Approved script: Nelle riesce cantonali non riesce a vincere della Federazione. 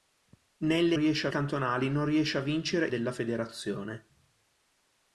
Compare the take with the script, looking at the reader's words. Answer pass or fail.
pass